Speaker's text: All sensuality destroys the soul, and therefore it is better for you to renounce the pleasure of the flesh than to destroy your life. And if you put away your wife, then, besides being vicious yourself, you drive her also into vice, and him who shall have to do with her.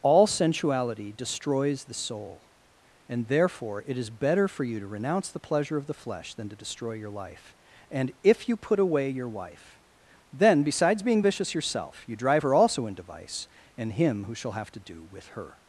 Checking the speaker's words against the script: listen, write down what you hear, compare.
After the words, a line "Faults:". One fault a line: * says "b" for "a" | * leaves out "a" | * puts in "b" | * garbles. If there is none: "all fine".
All sensuality destroys the soul, and therefore it is better for you to renounce the pleasure of the flesh than to destroy your life. And if you put away your wife, then, besides being vicious yourself, you drive her also into vice, and him who shall have to do with her.
Faults:
all fine